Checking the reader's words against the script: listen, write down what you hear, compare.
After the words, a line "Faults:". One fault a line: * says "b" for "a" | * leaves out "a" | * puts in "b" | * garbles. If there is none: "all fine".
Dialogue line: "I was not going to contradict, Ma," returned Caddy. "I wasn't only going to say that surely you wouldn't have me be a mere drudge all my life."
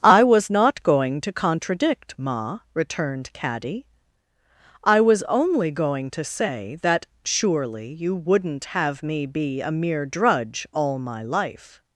"I was not going to contradict, Ma," returned Caddy. "I was only going to say that surely you wouldn't have me be a mere drudge all my life."
Faults:
* says "was" for "wasn't"